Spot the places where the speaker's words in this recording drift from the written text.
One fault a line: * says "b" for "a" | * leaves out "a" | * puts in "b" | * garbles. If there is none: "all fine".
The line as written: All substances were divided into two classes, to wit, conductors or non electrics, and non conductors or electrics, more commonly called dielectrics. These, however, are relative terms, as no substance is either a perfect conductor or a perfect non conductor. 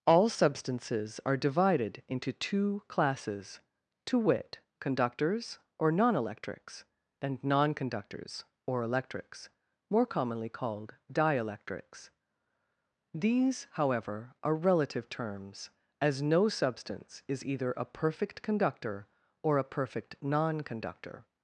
* says "are" for "were"